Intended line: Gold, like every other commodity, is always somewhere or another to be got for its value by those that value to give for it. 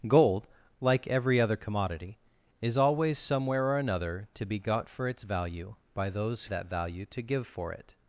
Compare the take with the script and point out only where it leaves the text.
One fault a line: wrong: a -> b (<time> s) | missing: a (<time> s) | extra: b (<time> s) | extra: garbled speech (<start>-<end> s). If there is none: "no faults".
no faults